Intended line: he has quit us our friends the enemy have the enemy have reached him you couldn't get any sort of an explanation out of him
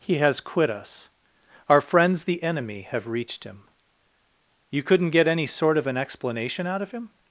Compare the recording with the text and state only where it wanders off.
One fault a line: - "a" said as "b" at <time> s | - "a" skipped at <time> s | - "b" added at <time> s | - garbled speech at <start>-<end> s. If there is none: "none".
- "the enemy have" skipped at 3.1 s